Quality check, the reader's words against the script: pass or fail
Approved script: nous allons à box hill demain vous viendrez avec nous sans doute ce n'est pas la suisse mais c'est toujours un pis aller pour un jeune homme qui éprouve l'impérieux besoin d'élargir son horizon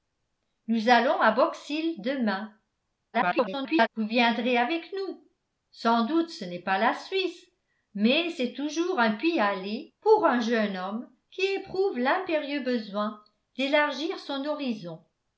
fail